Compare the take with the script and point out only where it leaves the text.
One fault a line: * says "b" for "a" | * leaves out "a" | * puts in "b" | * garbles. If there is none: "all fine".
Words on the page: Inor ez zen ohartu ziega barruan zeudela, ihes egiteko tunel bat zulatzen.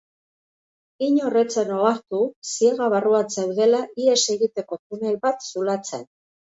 all fine